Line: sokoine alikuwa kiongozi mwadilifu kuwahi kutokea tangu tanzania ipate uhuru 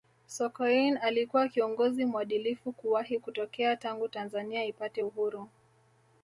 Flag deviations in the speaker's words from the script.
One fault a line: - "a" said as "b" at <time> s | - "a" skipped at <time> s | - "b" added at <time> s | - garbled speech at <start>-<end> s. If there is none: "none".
none